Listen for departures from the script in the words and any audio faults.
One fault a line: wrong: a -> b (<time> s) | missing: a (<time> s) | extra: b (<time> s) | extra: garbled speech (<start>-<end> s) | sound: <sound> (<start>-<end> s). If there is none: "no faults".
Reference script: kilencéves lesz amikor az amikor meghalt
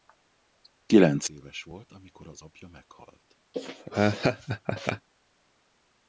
wrong: lesz -> volt (1.6 s)
wrong: amikor -> apja (2.4 s)
sound: laugh (3.5-5.1 s)